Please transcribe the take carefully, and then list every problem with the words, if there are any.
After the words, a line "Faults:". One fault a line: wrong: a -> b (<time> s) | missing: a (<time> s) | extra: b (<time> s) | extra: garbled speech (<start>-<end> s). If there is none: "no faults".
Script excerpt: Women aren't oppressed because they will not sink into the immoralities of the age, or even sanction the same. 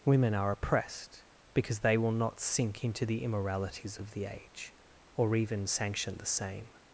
Women are oppressed because they will not sink into the immoralities of the age, or even sanction the same.
Faults:
wrong: aren't -> are (0.3 s)